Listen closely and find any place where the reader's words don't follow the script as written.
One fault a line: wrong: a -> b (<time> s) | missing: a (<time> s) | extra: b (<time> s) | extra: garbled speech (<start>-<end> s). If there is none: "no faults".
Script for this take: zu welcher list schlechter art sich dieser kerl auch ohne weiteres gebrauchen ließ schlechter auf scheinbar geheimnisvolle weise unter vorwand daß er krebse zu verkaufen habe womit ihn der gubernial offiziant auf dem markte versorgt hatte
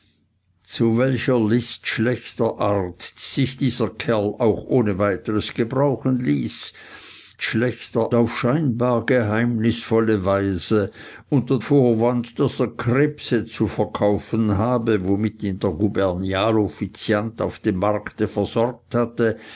no faults